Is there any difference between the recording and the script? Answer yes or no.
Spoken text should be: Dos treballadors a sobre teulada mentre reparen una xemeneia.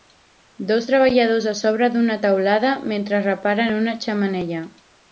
yes